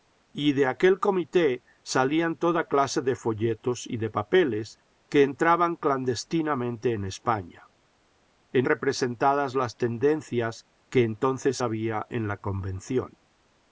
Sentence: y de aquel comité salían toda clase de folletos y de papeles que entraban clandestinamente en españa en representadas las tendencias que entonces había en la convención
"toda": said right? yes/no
yes